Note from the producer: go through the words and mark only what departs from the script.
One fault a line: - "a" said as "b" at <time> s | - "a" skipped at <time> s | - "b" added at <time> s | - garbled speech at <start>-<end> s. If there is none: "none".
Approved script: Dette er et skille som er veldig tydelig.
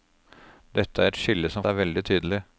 none